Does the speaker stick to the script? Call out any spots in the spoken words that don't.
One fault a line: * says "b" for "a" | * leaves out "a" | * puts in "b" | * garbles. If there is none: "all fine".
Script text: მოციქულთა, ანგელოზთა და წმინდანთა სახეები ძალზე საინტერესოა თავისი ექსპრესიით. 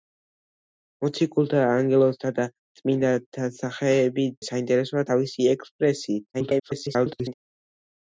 * leaves out "ძალზე"
* garbles